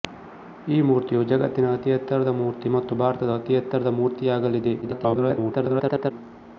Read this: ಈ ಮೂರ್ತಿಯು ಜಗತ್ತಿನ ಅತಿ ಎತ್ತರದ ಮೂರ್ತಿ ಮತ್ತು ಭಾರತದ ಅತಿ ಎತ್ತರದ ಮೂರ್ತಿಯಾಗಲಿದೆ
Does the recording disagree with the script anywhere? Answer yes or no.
yes